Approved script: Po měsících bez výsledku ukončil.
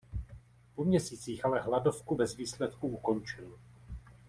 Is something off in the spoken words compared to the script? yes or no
yes